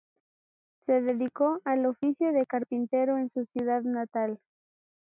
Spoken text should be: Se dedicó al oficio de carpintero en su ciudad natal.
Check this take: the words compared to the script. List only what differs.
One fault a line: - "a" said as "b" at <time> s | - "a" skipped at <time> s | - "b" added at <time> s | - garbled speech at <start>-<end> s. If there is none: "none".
none